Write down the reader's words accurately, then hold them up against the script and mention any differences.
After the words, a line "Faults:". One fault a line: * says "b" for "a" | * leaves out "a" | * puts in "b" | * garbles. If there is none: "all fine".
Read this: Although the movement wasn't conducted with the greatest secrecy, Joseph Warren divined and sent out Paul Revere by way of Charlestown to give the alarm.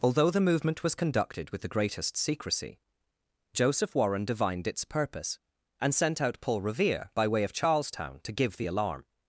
Although the movement was conducted with the greatest secrecy, Joseph Warren divined its purpose, and sent out Paul Revere by way of Charlestown to give the alarm.
Faults:
* says "was" for "wasn't"
* puts in "its purpose"